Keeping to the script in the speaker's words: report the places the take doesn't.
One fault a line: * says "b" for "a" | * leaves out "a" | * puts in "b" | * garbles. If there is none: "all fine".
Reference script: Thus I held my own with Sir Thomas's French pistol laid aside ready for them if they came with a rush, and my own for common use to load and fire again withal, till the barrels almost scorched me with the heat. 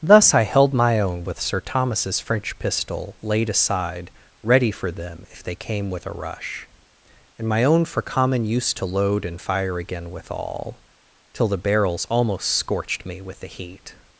all fine